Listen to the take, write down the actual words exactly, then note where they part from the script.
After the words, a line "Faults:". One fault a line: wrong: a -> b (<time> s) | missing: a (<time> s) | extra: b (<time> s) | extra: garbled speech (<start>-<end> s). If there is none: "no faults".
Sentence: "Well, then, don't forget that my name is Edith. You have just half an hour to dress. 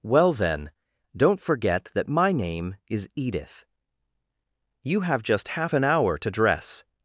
"Well, then, don't forget that my name is Edith. You have just half an hour to dress.
Faults:
no faults